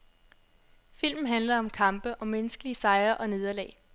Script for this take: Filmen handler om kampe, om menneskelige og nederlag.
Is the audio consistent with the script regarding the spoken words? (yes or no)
no